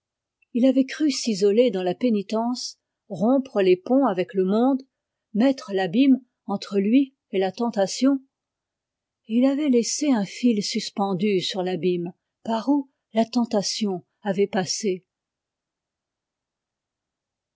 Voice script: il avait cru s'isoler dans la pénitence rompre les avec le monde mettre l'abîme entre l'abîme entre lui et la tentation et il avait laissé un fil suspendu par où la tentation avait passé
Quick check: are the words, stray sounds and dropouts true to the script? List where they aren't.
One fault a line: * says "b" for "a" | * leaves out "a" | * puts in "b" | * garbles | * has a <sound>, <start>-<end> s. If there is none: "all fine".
* puts in "ponts"
* leaves out "l'abîme entre"
* puts in "sur l'abîme"